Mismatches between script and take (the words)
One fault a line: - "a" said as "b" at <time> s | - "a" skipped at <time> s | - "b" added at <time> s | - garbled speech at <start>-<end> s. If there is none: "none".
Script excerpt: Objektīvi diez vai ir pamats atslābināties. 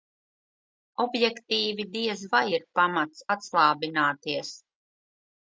none